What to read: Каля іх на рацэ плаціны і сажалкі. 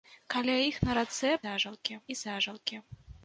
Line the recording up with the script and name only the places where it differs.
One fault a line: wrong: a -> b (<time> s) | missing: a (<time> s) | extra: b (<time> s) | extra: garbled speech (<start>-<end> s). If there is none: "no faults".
wrong: плаціны -> сажалкі (1.4 s)